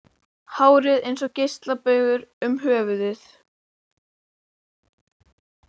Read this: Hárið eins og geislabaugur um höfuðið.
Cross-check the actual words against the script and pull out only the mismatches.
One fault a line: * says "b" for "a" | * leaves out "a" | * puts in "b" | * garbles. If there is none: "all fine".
all fine